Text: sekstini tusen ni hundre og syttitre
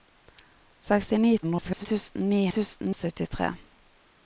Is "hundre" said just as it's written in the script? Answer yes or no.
no